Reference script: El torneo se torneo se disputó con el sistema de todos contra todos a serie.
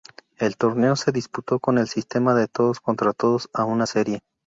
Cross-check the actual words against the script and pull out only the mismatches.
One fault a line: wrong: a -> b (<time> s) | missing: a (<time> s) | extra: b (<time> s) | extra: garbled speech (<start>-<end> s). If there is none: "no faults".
missing: torneo se (1.1 s)
extra: una (3.6 s)